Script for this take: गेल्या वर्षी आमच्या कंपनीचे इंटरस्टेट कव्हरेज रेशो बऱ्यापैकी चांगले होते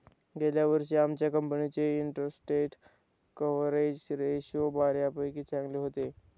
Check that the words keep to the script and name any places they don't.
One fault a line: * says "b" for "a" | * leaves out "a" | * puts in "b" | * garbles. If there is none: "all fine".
all fine